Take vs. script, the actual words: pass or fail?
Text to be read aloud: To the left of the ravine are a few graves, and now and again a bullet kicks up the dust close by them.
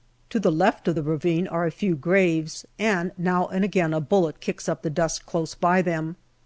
pass